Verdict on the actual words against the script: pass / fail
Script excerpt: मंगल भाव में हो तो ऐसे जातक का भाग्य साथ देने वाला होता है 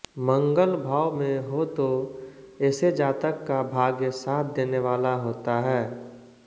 pass